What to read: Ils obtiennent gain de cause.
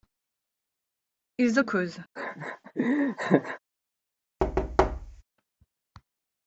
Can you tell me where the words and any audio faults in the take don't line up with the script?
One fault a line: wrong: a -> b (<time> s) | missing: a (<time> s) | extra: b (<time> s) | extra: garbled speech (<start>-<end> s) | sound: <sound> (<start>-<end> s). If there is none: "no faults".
missing: obtiennent gain de (1.6 s)
sound: laugh (2.2-3.6 s)
sound: thud (4.4-5.2 s)